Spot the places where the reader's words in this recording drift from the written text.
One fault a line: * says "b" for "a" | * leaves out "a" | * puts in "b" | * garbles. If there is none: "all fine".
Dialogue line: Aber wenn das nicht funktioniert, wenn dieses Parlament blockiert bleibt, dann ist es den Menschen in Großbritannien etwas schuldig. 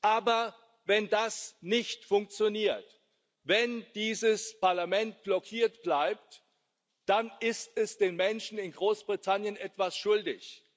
all fine